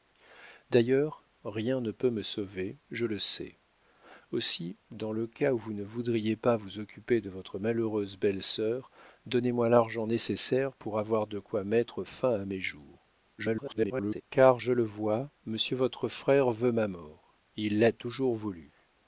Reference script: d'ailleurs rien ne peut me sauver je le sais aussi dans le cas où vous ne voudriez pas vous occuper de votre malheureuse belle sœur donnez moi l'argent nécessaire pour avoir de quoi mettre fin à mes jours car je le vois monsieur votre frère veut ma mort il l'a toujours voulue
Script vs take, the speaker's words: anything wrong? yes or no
yes